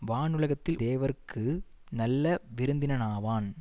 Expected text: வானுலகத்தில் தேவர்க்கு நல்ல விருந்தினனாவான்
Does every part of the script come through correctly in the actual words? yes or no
yes